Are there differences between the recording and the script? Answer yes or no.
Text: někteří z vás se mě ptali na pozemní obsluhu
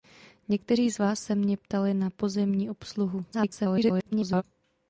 yes